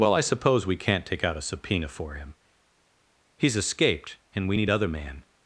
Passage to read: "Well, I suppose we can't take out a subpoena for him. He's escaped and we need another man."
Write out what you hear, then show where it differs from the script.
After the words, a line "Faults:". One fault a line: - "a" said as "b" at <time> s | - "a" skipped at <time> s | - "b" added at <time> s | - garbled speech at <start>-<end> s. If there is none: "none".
"Well, I suppose we can't take out a subpoena for him. He's escaped and we need other man."
Faults:
- "another" said as "other" at 4.7 s